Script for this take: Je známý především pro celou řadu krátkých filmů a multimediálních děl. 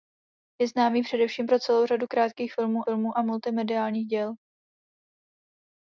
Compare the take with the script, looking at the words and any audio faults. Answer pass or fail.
fail